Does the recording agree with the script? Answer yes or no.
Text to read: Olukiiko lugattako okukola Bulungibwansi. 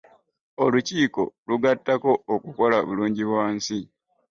yes